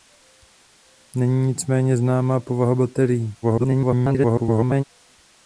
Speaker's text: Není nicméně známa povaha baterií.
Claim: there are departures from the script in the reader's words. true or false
true